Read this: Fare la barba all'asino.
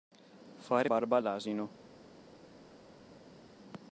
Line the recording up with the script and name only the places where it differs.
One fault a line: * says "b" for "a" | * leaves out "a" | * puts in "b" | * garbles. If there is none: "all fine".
* leaves out "la"